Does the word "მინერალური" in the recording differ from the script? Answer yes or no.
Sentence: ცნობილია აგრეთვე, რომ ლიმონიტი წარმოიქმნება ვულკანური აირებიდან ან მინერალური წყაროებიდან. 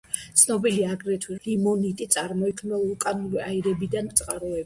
yes